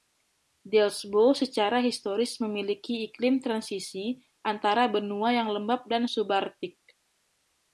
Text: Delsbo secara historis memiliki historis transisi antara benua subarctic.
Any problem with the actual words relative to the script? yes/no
yes